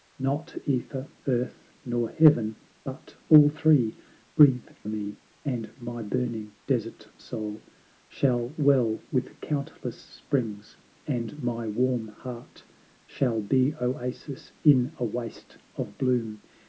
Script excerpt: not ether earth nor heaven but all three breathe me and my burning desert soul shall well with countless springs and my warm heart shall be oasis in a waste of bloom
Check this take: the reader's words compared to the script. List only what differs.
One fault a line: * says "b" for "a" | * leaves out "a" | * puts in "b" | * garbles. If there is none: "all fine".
all fine